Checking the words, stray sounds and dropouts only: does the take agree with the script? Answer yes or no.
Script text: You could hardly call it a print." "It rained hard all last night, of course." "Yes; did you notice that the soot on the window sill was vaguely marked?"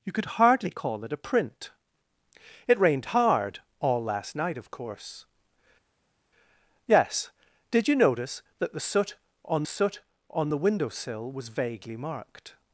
no